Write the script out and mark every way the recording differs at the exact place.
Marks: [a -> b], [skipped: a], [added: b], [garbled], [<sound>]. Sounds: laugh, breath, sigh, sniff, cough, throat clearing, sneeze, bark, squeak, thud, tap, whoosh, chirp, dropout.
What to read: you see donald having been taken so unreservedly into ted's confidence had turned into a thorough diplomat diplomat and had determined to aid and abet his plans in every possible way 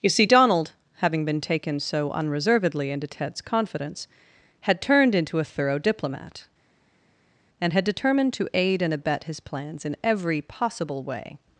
you see donald having been taken so unreservedly into ted's confidence had turned into a thorough diplomat [skipped: diplomat] and had determined to aid and abet his plans in every possible way